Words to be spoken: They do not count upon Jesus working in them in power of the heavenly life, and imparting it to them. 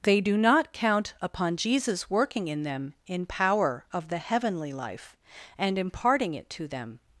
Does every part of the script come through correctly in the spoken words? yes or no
yes